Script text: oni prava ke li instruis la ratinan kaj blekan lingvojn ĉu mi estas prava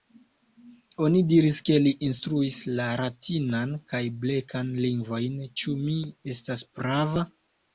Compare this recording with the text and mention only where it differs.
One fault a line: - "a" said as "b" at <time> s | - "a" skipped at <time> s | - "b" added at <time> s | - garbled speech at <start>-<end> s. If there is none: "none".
- "prava" said as "diris" at 1.3 s